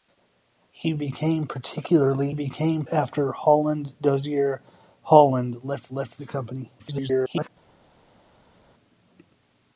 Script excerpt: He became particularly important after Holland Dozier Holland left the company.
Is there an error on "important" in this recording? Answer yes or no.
yes